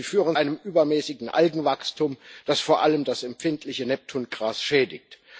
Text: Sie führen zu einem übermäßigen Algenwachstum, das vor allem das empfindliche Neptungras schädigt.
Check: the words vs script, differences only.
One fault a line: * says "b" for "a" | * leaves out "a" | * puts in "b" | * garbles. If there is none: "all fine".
* leaves out "zu"